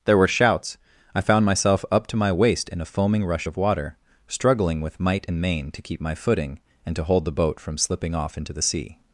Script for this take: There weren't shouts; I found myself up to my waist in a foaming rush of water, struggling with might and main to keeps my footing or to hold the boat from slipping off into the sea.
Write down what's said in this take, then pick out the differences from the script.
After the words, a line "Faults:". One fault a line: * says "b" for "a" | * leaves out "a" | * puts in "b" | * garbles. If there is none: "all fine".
There were shouts; I found myself up to my waist in a foaming rush of water, struggling with might and main to keep my footing and to hold the boat from slipping off into the sea.
Faults:
* says "were" for "weren't"
* says "keep" for "keeps"
* says "and" for "or"